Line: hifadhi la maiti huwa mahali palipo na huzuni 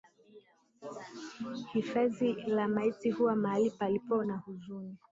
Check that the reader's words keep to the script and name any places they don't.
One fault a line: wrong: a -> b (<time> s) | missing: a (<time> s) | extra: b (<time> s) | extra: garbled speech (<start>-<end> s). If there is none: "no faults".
no faults